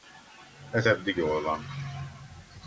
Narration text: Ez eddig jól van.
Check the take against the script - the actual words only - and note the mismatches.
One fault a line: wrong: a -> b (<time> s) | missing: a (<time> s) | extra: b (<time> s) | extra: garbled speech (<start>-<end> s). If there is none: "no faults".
no faults